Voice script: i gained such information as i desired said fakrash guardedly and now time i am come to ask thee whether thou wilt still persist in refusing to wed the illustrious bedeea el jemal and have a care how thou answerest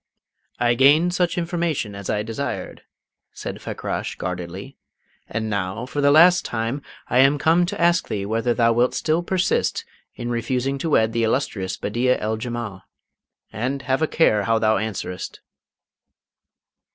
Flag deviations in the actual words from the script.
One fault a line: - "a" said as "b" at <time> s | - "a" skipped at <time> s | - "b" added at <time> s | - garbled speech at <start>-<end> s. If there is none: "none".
- "for the last" added at 5.8 s